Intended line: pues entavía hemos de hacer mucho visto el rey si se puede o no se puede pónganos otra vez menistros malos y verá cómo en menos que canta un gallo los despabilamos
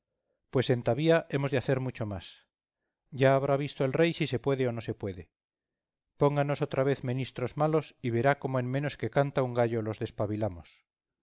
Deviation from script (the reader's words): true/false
true